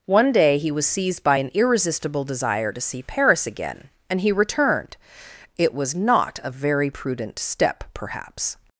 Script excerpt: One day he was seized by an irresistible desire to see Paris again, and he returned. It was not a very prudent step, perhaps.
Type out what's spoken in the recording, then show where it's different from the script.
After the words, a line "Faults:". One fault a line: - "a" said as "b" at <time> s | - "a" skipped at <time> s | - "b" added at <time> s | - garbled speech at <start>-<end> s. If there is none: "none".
One day he was seized by an irresistible desire to see Paris again, and he returned. It was not a very prudent step, perhaps.
Faults:
none